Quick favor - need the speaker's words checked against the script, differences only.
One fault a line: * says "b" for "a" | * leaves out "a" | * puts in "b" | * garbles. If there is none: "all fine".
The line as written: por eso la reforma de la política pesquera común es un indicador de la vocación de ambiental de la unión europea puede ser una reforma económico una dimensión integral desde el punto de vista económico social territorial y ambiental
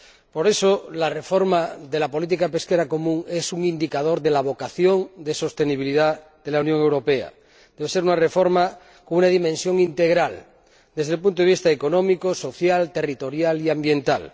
* says "sostenibilidad" for "ambiental"
* says "debe" for "puede"
* says "con" for "económico"